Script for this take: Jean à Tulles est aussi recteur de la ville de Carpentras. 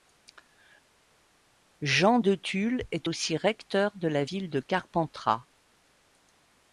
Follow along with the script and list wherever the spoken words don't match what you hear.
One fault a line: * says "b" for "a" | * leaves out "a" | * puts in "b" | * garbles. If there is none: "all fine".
* says "de" for "à"